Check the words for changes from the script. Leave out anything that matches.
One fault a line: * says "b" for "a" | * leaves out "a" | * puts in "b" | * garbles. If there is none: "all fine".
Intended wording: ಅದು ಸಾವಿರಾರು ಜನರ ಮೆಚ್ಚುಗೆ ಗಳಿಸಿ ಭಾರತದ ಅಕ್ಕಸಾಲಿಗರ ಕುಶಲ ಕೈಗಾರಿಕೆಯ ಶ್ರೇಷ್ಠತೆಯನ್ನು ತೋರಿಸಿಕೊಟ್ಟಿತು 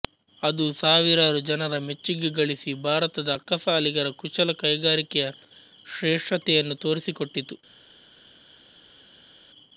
all fine